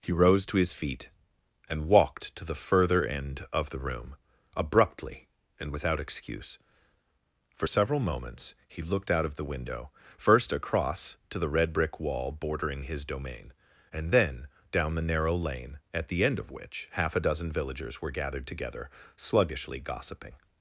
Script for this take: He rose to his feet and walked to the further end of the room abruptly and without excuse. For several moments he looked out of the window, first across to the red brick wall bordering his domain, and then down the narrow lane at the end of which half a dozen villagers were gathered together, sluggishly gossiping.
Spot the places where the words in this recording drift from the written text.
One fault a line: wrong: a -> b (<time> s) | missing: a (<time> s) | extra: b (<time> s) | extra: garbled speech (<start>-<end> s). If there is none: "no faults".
no faults